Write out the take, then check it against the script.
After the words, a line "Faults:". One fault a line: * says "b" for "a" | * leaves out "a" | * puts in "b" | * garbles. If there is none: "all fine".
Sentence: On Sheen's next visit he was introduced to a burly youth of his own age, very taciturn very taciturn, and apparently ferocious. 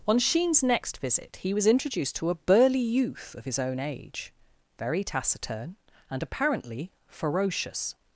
On Sheen's next visit he was introduced to a burly youth of his own age, very taciturn, and apparently ferocious.
Faults:
* leaves out "very taciturn"